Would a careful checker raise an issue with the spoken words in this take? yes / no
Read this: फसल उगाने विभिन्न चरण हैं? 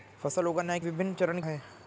no